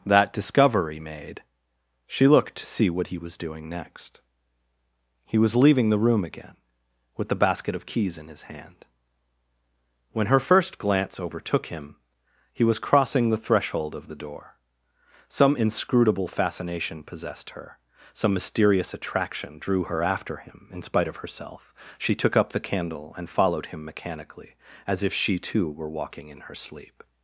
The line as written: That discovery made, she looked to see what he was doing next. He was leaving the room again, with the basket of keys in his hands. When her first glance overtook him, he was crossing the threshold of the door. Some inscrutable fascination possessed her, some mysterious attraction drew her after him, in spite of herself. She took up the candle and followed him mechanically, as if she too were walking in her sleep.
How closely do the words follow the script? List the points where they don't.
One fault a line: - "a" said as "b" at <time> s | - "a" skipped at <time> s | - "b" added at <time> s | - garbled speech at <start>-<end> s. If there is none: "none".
- "hands" said as "hand" at 8.4 s